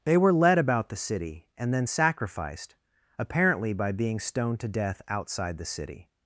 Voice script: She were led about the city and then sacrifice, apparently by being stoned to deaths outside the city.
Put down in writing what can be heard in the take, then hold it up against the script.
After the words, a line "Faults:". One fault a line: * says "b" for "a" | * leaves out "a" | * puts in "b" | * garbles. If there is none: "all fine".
They were led about the city and then sacrificed, apparently by being stoned to death outside the city.
Faults:
* says "They" for "She"
* says "sacrificed" for "sacrifice"
* says "death" for "deaths"